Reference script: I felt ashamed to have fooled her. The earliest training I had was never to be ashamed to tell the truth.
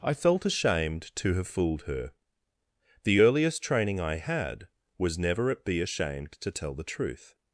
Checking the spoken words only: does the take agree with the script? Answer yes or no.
no